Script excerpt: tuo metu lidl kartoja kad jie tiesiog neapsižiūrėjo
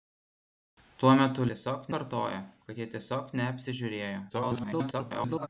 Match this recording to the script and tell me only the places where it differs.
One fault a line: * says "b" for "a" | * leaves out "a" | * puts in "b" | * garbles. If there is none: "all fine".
* says "tiesiog" for "lidl"
* garbles